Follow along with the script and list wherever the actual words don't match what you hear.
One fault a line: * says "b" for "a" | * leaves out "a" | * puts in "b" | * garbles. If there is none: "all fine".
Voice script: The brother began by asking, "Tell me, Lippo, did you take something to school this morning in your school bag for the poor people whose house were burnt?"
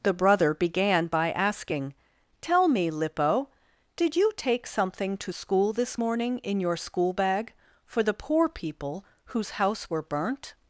all fine